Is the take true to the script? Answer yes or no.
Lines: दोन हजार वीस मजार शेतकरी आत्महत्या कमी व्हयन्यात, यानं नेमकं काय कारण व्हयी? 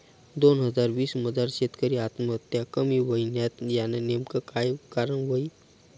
yes